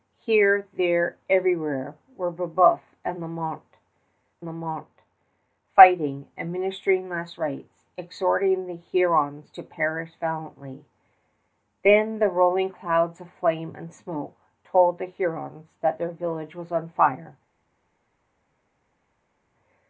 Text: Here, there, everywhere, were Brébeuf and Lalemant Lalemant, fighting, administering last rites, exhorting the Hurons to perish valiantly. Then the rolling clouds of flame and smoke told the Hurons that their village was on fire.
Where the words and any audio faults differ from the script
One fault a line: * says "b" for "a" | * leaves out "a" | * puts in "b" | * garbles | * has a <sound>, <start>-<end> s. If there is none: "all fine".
all fine